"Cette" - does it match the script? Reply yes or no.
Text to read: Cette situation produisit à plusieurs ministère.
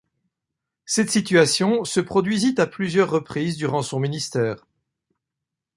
yes